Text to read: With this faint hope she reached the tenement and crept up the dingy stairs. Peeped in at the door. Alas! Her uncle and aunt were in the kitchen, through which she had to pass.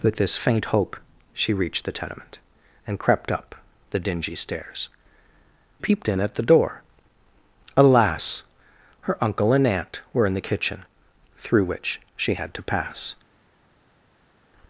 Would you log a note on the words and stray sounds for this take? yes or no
no